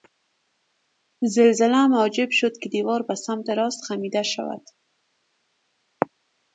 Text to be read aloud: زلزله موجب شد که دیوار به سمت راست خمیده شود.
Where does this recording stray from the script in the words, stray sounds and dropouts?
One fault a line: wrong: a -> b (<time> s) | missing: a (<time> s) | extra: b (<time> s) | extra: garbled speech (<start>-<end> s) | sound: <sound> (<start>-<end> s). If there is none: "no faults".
no faults